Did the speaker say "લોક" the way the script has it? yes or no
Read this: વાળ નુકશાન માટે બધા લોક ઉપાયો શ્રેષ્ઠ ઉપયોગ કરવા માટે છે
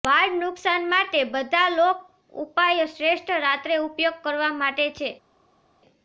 yes